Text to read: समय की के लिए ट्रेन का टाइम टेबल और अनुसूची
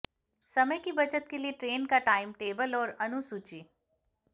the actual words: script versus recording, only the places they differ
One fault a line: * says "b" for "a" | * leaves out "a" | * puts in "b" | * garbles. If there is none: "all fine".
* puts in "बचत"